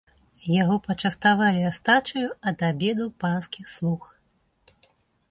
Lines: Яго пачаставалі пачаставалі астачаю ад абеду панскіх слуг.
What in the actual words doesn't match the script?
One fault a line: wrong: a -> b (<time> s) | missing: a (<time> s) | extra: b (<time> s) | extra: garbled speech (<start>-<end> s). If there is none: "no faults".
missing: пачаставалі (1.6 s)